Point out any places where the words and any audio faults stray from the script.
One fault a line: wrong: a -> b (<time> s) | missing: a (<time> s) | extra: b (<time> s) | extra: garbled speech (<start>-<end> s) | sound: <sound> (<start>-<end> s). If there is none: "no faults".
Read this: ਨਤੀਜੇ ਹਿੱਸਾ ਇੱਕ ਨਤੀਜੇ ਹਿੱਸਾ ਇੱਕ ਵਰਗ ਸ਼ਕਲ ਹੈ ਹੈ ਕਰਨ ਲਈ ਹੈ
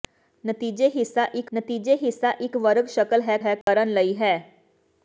sound: dropout (3.6-3.7 s)